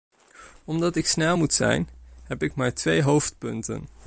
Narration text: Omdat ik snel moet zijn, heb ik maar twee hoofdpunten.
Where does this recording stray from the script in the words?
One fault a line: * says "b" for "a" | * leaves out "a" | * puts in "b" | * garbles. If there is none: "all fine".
all fine